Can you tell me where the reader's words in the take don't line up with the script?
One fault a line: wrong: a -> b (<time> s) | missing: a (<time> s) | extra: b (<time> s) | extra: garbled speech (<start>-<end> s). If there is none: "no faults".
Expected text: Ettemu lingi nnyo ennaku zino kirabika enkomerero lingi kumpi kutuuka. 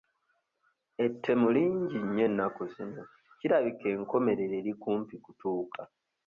wrong: lingi -> eri (4.6 s)